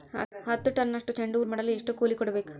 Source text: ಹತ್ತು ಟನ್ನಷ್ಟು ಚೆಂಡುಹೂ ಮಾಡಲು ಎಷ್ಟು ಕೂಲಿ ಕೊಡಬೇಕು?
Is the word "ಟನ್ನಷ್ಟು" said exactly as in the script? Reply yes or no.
yes